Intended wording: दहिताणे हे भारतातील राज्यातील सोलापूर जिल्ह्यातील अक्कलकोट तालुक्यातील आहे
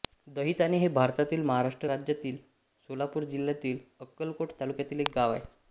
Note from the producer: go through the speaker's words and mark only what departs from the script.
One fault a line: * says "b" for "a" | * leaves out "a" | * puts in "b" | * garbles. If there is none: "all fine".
* puts in "महाराष्ट्र"
* puts in "एक गाव"